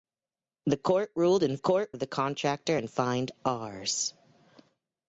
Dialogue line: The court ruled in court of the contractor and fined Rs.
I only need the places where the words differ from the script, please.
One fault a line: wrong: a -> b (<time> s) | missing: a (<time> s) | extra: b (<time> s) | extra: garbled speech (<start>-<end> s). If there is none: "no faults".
no faults